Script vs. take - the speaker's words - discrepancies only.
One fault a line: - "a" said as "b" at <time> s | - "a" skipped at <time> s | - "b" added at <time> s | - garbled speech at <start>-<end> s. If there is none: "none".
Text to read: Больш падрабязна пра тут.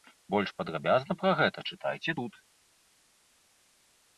- "гэта чытайце" added at 1.4 s